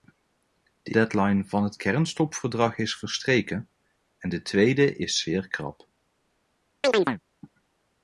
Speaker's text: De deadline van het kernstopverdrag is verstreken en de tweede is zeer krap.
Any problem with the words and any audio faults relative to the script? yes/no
yes